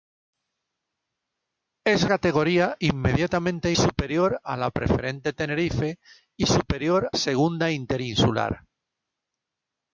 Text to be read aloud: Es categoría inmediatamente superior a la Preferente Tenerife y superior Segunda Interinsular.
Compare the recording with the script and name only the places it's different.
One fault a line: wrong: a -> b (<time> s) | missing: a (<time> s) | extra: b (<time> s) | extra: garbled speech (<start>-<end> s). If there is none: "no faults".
no faults